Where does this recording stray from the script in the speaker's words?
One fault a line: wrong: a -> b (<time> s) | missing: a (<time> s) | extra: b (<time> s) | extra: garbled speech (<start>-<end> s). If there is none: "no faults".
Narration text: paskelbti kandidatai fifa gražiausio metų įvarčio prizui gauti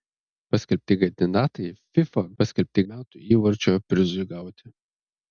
wrong: gražiausio -> paskelbti (2.4 s)